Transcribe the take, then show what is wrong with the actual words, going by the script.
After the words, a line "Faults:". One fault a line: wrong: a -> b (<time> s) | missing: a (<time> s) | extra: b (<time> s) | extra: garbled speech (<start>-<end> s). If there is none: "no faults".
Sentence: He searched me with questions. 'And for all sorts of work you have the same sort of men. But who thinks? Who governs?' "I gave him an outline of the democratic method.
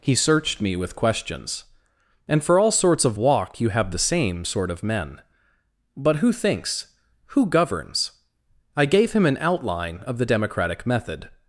He searched me with questions. 'And for all sorts of walk you have the same sort of men. But who thinks? Who governs?' "I gave him an outline of the democratic method.
Faults:
wrong: work -> walk (3.2 s)